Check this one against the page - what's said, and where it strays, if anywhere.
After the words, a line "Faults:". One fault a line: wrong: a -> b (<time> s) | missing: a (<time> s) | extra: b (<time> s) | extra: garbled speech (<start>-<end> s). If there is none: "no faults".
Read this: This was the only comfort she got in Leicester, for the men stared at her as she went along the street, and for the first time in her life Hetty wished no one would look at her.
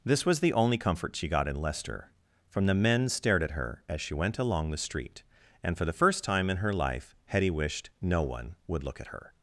This was the only comfort she got in Leicester, from the men stared at her as she went along the street, and for the first time in her life Hetty wished no one would look at her.
Faults:
wrong: for -> from (2.5 s)